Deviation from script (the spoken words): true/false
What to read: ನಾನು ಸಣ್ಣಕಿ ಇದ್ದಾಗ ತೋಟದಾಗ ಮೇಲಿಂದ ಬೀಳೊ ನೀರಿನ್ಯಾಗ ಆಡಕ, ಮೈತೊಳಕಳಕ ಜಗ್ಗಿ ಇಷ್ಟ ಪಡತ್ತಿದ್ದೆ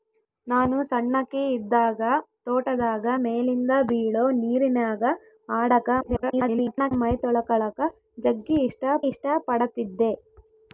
true